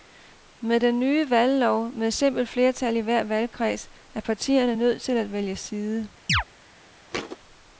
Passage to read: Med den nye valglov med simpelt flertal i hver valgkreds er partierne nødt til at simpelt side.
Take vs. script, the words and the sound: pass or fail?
fail